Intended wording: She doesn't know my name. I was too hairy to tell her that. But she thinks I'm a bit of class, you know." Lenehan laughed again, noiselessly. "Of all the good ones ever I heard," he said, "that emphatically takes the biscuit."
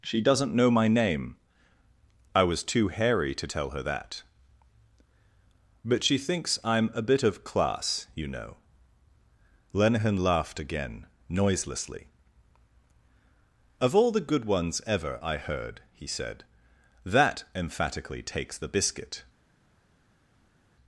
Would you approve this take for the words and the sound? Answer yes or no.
yes